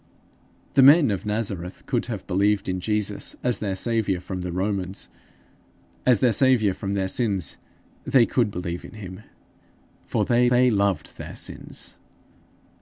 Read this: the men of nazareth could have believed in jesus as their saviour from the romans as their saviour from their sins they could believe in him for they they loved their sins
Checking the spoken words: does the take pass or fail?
pass